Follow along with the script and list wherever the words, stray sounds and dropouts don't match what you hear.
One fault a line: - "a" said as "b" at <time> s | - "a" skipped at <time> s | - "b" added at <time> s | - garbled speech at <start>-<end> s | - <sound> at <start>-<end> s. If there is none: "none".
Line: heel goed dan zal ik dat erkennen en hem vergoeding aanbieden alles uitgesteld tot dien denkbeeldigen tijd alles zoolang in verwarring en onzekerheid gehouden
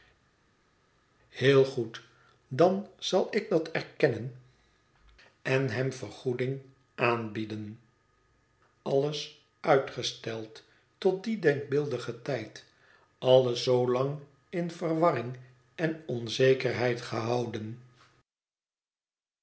none